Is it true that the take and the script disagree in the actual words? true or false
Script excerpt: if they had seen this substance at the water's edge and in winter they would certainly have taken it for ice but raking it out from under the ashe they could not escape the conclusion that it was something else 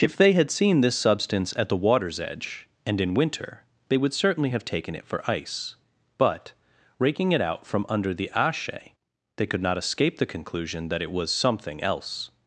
false